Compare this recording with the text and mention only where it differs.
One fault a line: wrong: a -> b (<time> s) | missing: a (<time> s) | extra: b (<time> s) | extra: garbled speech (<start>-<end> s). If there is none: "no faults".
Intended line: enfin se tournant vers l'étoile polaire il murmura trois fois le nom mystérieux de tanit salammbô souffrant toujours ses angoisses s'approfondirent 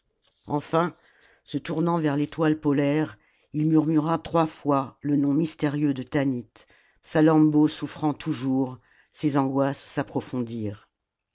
no faults